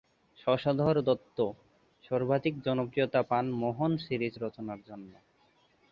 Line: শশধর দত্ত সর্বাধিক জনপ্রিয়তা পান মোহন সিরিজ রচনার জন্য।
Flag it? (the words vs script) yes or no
no